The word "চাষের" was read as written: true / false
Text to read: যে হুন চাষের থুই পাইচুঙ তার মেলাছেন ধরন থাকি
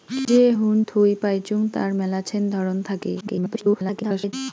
false